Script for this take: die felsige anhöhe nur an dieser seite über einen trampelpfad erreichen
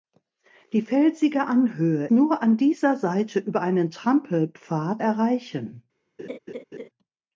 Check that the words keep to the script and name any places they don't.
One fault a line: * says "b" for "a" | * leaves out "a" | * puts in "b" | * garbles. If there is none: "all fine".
all fine